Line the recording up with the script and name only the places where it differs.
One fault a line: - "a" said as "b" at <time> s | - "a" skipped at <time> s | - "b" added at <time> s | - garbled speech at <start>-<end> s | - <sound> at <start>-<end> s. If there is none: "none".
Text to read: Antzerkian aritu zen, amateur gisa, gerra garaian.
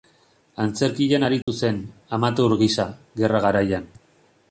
- dropout at 1.4-1.5 s